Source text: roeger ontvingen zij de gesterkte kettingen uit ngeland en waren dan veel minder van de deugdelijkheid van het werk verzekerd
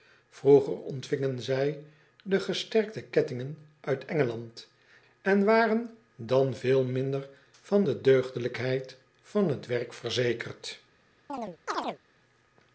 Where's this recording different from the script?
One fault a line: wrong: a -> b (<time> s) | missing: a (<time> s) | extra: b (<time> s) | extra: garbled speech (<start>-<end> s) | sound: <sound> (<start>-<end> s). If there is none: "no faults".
sound: chirp (11.3-12.0 s)